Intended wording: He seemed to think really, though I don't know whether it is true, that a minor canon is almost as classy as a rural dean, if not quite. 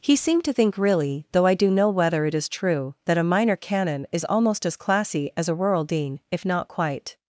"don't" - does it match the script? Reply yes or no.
no